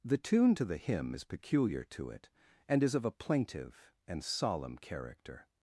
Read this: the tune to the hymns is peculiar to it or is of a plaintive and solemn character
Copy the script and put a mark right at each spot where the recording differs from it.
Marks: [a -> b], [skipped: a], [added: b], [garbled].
the tune to the [hymns -> hymn] is peculiar to it [or -> and] is of a plaintive and solemn character